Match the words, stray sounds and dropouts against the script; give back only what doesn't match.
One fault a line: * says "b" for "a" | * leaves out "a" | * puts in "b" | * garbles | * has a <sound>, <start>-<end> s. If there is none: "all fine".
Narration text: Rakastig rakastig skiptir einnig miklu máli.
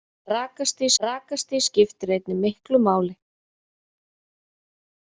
all fine